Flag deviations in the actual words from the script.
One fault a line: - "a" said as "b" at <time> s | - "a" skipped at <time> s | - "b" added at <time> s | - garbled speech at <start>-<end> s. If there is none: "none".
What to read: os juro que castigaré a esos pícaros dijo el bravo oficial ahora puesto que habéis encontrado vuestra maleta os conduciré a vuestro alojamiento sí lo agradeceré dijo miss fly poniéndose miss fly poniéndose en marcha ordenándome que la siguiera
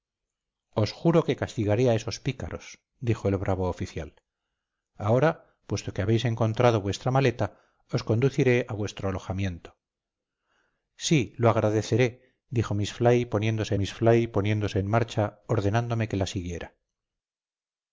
none